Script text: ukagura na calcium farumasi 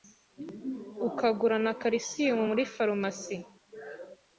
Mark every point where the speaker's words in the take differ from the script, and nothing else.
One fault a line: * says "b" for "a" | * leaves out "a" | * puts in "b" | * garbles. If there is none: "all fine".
* puts in "muri"